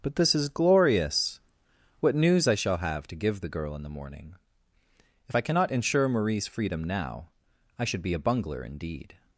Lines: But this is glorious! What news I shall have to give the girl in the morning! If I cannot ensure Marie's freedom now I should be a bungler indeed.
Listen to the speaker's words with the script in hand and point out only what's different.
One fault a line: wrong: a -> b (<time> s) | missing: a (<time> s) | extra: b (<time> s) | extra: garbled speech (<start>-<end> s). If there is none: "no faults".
no faults